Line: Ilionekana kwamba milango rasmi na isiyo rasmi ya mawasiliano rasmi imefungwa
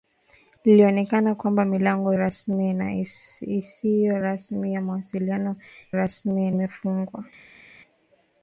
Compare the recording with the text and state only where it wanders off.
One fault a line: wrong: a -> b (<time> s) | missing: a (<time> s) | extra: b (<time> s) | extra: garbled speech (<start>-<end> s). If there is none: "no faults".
no faults